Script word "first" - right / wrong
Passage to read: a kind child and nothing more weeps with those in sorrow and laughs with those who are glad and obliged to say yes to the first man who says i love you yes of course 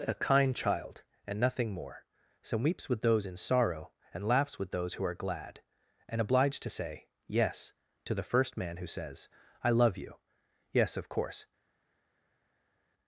right